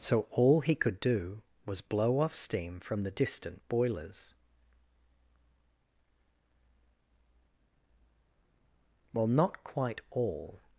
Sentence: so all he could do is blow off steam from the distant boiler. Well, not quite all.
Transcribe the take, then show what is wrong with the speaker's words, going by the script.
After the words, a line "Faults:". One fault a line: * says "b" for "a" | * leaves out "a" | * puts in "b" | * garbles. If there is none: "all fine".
so all he could do was blow off steam from the distant boilers. Well, not quite all.
Faults:
* says "was" for "is"
* says "boilers" for "boiler"